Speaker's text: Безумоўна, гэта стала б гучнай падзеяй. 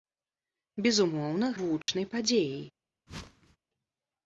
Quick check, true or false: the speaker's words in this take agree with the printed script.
false